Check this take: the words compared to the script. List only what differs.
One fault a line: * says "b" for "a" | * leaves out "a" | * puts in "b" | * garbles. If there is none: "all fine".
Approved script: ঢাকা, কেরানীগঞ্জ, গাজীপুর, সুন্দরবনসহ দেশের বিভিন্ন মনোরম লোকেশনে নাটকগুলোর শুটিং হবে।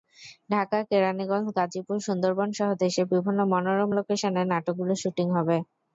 all fine